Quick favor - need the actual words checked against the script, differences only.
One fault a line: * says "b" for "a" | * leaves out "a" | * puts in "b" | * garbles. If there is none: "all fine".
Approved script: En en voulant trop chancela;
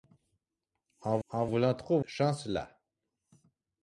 all fine